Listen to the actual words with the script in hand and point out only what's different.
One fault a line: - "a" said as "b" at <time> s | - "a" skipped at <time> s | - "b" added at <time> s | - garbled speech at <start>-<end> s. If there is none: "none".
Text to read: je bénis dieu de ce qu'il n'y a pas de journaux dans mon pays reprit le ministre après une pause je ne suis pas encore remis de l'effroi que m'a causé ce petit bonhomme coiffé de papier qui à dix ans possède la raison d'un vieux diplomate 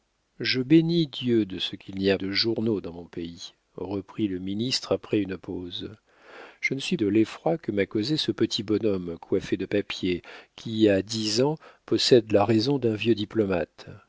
- "pas" skipped at 2.2 s
- "pas encore remis" skipped at 7.0 s